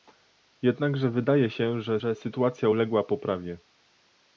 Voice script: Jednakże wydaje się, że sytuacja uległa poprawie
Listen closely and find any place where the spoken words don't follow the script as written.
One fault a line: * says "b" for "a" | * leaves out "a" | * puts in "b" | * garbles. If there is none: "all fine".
* puts in "że"